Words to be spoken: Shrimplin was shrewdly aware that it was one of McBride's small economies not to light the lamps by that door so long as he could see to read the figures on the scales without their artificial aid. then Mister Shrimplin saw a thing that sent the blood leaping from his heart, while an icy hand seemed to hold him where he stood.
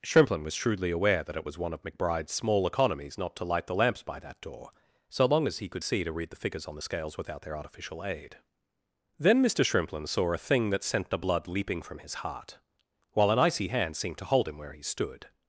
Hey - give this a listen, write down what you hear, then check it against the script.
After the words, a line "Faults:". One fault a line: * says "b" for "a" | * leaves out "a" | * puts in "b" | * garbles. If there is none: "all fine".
Shrimplin was shrewdly aware that it was one of McBride's small economies not to light the lamps by that door so long as he could see to read the figures on the scales without their artificial aid. then Mister Shrimplin saw a thing that sent the blood leaping from his heart, while an icy hand seemed to hold him where he stood.
Faults:
all fine